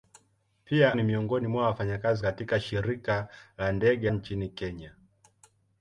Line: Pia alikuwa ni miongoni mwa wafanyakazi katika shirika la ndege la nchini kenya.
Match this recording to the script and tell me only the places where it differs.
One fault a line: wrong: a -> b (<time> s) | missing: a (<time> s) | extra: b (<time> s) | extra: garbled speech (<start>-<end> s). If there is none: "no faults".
missing: alikuwa (0.9 s)
missing: la (4.1 s)